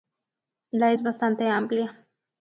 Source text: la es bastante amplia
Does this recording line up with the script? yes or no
yes